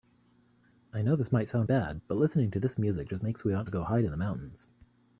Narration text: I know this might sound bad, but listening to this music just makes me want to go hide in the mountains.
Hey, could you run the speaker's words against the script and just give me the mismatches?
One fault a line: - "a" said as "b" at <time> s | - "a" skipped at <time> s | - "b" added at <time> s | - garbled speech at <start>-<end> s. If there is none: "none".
none